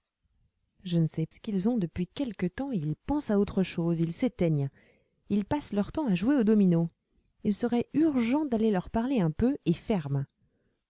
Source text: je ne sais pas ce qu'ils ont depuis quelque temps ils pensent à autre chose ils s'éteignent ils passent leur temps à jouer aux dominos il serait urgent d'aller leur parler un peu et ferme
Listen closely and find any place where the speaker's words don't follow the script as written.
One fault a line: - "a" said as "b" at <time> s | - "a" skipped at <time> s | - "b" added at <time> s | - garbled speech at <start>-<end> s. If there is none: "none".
- "pas" skipped at 1.3 s